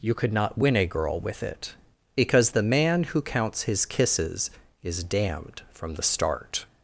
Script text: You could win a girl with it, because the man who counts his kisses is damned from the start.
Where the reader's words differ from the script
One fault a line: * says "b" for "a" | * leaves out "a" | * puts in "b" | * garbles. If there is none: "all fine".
* puts in "not"